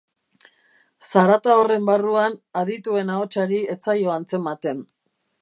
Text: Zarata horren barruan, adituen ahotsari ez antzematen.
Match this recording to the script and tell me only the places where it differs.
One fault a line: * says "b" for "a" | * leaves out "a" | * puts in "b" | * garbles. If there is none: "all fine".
* puts in "zaio"